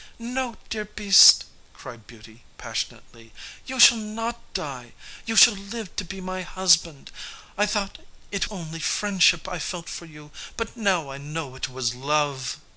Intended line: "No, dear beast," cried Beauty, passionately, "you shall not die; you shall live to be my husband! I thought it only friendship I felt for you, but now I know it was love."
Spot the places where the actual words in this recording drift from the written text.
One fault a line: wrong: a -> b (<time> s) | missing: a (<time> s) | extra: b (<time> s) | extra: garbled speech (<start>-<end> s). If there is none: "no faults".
no faults